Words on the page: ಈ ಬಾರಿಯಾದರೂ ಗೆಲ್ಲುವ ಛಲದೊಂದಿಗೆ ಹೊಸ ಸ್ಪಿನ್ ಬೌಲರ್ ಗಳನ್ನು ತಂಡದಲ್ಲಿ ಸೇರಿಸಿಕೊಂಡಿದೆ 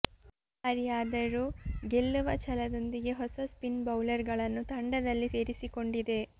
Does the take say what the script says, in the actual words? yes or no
yes